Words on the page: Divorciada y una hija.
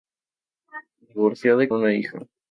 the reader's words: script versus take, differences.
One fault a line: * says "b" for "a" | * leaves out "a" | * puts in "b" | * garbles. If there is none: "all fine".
all fine